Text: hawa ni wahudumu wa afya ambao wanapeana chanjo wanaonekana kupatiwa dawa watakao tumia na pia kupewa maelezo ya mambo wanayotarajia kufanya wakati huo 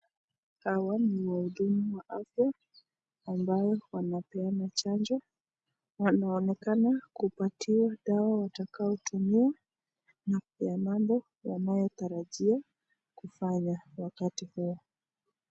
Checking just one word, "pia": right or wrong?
wrong